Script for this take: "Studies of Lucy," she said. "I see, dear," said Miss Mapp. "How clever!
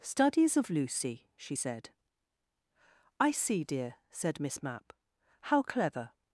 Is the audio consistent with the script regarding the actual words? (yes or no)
yes